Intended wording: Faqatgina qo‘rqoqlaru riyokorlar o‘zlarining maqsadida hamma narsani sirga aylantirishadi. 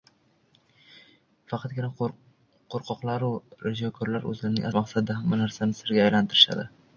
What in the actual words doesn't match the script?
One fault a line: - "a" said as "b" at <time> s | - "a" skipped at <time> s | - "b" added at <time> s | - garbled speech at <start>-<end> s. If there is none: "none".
none